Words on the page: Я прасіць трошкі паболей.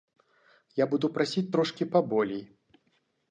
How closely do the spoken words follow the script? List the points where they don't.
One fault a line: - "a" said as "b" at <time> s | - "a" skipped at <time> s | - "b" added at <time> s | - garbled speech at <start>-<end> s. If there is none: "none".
- "буду" added at 0.9 s